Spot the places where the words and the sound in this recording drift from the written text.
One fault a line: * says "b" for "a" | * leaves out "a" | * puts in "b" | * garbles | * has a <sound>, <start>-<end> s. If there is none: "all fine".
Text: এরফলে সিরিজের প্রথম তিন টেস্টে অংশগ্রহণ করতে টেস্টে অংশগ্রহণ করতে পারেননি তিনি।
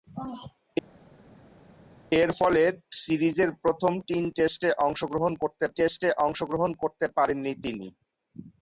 all fine